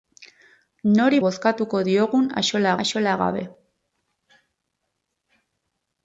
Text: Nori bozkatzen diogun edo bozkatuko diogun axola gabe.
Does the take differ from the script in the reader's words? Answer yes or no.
yes